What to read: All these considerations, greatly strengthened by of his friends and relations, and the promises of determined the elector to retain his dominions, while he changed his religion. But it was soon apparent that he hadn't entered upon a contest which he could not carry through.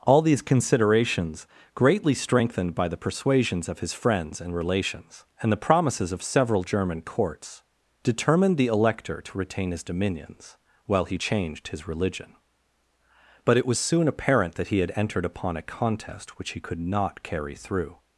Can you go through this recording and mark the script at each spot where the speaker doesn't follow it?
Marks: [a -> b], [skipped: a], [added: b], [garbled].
All these considerations, greatly strengthened by [added: the persuasions] of his friends and relations, and the promises of [added: several German courts] determined the elector to retain his dominions, while he changed his religion. But it was soon apparent that he [hadn't -> had] entered upon a contest which he could not carry through.